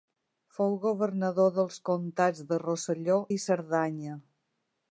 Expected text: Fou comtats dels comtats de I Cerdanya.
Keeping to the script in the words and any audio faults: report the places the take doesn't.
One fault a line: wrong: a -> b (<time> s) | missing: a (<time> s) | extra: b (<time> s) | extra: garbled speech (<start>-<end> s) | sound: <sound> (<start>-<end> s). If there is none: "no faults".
wrong: comtats -> governador (0.8 s)
extra: Rosselló (2.6 s)